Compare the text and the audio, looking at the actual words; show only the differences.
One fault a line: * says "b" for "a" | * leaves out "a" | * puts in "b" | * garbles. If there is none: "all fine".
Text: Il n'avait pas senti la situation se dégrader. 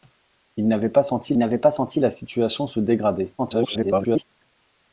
* puts in "n'avait pas senti"
* garbles